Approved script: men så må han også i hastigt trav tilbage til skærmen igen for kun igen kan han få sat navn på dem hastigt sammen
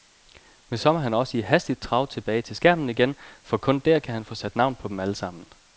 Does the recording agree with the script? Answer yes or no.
no